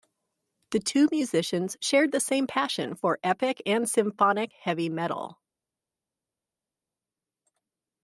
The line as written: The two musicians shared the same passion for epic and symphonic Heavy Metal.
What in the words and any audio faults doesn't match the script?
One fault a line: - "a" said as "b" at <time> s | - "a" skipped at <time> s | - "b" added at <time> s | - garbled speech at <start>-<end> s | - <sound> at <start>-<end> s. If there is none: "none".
none